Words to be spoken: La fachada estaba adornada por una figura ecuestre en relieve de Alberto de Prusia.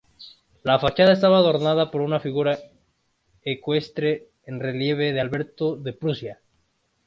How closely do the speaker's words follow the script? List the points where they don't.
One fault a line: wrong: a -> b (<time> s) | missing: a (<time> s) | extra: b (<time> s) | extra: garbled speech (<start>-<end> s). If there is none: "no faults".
no faults